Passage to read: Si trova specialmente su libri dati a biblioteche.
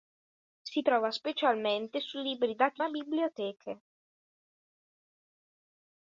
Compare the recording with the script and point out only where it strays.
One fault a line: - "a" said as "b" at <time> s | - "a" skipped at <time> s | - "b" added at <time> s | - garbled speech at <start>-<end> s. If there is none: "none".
none